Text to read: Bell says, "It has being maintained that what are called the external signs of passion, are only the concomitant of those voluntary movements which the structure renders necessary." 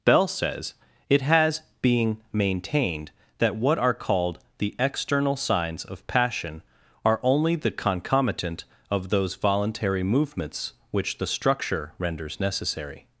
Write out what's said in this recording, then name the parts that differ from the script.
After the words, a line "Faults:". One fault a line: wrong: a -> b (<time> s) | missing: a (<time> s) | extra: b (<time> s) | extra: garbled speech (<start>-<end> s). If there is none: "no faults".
Bell says, "It has being maintained that what are called the external signs of passion, are only the concomitant of those voluntary movements which the structure renders necessary."
Faults:
no faults